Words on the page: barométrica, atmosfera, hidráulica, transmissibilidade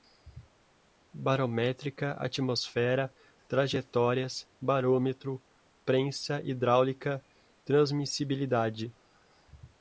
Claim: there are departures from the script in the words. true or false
true